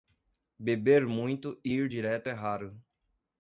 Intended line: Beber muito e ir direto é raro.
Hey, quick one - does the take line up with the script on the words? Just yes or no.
yes